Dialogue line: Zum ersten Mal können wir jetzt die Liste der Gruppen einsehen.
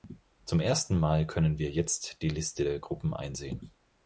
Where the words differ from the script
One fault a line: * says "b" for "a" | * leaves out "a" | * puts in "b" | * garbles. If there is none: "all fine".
all fine